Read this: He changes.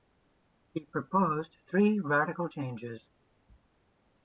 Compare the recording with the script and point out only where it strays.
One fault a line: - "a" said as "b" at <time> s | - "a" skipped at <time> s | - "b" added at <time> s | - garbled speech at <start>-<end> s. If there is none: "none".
- "proposed three radical" added at 0.8 s